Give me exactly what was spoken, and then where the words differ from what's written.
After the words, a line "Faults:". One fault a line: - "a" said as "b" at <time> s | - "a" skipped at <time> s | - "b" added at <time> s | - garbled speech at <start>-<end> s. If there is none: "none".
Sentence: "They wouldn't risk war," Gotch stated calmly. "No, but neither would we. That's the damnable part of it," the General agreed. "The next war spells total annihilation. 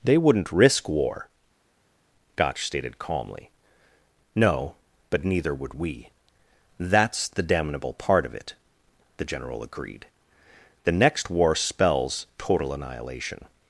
"They wouldn't risk war," Gotch stated calmly. "No, but neither would we. That's the damnable part of it," the General agreed. "The next war spells total annihilation.
Faults:
none